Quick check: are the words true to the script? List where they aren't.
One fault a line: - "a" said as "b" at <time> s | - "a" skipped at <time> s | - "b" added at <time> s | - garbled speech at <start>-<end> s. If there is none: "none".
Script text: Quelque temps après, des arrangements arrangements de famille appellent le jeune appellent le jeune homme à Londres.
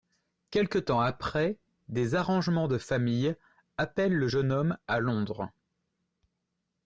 - "arrangements" skipped at 2.7 s
- "appellent le jeune" skipped at 4.5 s